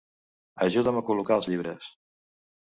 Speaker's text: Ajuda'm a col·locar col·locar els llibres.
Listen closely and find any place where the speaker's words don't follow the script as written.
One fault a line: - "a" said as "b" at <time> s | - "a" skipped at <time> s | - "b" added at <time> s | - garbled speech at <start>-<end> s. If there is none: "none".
- "col·locar" skipped at 1.4 s